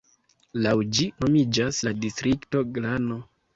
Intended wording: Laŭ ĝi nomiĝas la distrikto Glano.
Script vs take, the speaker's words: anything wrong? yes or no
no